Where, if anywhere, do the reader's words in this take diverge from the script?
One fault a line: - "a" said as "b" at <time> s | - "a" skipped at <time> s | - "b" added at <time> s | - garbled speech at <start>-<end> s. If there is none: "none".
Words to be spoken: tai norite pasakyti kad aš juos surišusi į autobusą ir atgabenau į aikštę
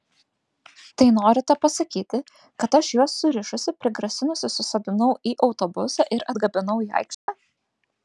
- "prigrasinusi susodinau" added at 3.9 s